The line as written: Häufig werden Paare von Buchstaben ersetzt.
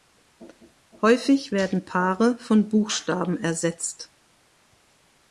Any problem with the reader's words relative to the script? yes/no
no